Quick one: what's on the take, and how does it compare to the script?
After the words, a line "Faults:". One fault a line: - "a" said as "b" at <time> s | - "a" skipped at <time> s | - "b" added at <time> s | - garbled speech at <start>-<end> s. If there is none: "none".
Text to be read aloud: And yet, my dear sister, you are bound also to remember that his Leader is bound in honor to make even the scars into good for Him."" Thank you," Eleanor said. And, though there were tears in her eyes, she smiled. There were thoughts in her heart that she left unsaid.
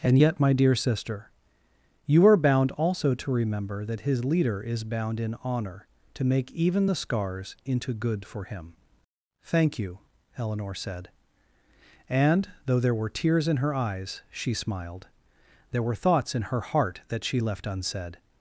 And yet, my dear sister, you are bound also to remember that his Leader is bound in honor to make even the scars into good for Him."" Thank you," Eleanor said. And, though there were tears in her eyes, she smiled. There were thoughts in her heart that she left unsaid.
Faults:
none